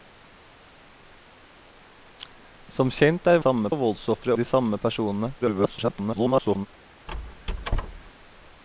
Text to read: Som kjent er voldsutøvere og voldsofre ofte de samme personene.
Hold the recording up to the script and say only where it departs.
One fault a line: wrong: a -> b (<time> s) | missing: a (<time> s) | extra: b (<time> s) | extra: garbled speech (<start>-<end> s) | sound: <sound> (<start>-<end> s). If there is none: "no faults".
wrong: voldsutøvere -> samme (3.4 s)
missing: ofte (4.3 s)
extra: garbled speech (5.4-6.7 s)
sound: squeak (7.1-8.1 s)